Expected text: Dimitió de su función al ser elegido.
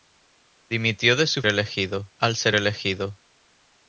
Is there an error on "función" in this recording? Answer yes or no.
yes